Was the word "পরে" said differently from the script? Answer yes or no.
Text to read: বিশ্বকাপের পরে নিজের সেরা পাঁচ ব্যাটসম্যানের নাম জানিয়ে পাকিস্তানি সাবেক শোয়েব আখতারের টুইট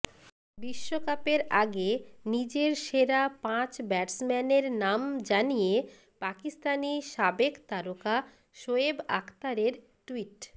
yes